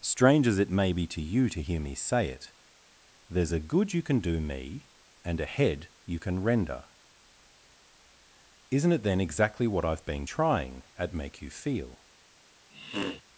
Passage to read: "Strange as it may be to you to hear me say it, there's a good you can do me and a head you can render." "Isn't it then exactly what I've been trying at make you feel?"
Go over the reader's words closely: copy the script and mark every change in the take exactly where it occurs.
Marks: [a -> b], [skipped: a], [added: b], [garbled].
"Strange as it may be to you to hear me say it, there's a good you can do me and a head you can render." "Isn't it then exactly what I've been trying at make you feel?"